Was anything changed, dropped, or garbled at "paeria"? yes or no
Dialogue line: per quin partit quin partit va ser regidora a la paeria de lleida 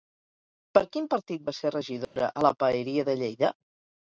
no